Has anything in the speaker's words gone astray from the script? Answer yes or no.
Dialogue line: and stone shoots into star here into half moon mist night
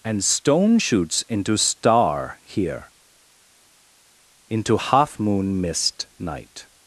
no